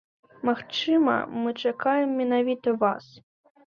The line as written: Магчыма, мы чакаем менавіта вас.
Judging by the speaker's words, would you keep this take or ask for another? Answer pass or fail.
pass